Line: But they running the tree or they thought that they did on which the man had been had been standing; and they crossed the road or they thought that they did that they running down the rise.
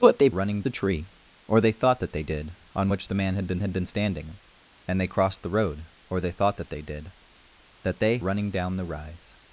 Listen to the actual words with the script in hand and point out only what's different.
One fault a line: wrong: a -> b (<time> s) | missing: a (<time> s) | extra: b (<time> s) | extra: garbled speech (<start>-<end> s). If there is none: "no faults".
no faults